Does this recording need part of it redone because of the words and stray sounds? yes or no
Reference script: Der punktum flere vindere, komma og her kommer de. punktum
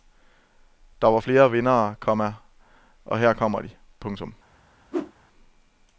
yes